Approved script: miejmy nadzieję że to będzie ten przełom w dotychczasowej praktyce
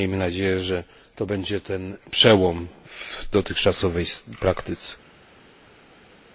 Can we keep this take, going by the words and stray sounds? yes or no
yes